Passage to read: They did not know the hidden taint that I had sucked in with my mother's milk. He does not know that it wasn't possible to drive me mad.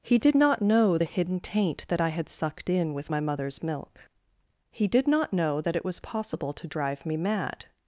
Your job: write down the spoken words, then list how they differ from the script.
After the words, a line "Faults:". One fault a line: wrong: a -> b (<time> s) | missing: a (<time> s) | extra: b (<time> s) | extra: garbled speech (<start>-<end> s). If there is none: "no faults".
He did not know the hidden taint that I had sucked in with my mother's milk. He did not know that it was possible to drive me mad.
Faults:
wrong: They -> He (0.0 s)
wrong: does -> did (4.9 s)
wrong: wasn't -> was (5.8 s)